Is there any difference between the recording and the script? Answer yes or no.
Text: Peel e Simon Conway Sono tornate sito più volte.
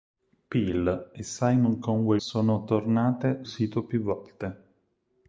no